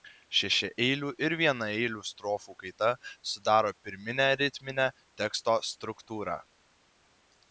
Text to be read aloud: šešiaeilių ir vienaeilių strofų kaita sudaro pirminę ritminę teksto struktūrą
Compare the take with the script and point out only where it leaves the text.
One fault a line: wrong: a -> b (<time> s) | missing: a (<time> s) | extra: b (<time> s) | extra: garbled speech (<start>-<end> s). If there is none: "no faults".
no faults